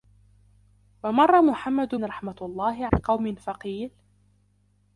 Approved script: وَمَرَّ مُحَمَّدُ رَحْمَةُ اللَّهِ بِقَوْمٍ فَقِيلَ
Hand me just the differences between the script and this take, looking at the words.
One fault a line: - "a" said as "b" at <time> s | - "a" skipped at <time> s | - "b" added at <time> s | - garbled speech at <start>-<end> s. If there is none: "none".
none